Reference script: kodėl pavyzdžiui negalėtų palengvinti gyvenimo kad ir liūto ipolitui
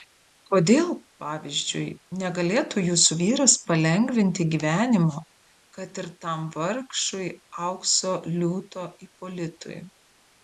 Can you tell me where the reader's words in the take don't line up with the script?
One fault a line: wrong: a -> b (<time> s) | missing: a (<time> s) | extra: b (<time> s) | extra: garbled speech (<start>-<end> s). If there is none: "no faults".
extra: jūsų vyras (2.9 s)
extra: tam vargšui aukso (6.3 s)